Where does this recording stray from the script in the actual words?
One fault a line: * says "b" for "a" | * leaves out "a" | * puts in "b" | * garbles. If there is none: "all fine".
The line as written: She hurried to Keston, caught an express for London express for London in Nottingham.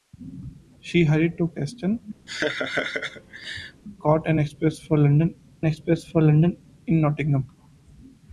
all fine